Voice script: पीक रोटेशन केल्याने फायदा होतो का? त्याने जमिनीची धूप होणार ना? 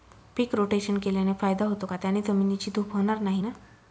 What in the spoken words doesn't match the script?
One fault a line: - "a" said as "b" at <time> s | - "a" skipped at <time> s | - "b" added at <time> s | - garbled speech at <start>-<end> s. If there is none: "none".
- "नाही" added at 3.2 s